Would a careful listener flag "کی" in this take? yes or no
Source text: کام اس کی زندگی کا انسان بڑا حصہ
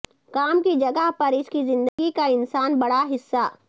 no